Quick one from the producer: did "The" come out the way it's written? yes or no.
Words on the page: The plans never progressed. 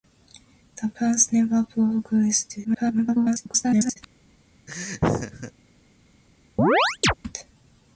yes